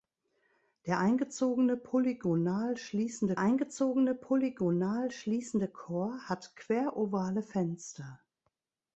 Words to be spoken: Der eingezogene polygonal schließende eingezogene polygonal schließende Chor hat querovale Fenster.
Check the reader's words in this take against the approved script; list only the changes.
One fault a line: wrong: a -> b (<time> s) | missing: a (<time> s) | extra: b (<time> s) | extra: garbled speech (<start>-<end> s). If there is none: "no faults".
no faults